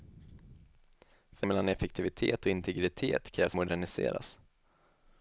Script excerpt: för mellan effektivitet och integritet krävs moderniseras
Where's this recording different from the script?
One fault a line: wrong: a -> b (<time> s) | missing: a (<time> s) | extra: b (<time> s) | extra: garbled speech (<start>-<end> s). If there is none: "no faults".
no faults